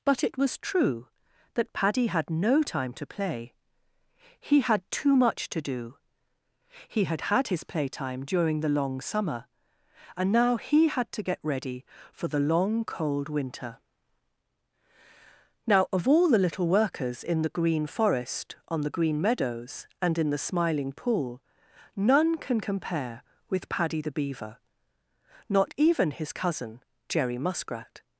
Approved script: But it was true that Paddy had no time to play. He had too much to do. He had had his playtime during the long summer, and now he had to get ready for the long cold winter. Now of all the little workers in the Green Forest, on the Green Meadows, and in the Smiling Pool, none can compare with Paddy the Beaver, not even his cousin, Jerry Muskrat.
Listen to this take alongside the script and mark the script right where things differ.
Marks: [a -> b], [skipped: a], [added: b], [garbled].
But it was true that Paddy had no time to play. He had too much to do. He had had his playtime during the long summer, and now he had to get ready for the long cold winter. Now of all the little workers in the Green Forest, on the Green Meadows, and in the Smiling Pool, none can compare with Paddy the Beaver, not even his cousin, Jerry Muskrat.